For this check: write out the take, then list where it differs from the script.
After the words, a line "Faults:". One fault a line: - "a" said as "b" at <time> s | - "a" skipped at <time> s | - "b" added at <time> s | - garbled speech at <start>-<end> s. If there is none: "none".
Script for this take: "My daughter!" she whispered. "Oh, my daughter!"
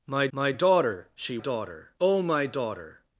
"My my daughter!" she daughter. "Oh, my daughter!"
Faults:
- "my" added at 0.3 s
- "whispered" said as "daughter" at 1.4 s